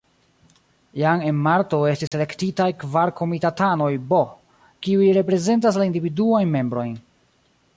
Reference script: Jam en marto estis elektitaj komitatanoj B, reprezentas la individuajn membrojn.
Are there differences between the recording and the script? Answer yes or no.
yes